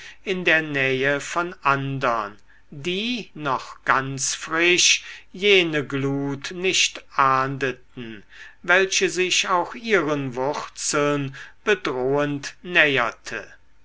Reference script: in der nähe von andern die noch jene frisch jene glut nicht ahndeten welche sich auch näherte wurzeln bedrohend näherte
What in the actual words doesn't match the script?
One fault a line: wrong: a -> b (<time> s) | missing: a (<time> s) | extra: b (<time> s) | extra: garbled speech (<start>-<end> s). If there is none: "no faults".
wrong: jene -> ganz (3.9 s)
wrong: näherte -> ihren (9.7 s)